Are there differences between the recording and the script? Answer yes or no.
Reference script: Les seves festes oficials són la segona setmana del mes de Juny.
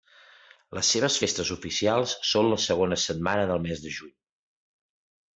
no